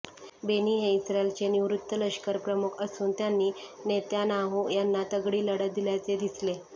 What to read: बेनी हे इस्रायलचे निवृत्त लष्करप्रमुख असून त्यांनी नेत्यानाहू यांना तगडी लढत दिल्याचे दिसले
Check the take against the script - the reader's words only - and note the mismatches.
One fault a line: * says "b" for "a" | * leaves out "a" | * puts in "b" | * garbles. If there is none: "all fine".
all fine